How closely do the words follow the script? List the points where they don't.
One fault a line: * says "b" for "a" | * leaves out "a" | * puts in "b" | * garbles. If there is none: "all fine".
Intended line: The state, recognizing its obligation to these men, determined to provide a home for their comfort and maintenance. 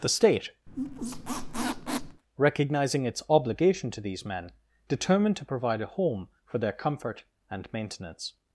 all fine